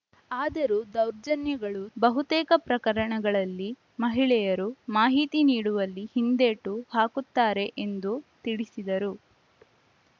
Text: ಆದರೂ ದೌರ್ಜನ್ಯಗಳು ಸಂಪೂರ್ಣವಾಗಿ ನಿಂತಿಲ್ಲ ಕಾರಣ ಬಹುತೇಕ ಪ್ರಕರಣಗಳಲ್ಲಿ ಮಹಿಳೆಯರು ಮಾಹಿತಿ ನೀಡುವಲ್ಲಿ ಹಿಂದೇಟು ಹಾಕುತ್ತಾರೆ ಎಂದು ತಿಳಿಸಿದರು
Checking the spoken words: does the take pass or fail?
fail